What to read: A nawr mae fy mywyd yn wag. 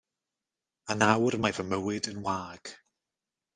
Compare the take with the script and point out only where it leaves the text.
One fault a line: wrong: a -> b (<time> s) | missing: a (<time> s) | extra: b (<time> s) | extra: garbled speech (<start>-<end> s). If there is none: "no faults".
no faults